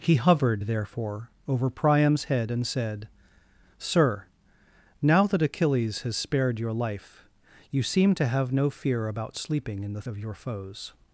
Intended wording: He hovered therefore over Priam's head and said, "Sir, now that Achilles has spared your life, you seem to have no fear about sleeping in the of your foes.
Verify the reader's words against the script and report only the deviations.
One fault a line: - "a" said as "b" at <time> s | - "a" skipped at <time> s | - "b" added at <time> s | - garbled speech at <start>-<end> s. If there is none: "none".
none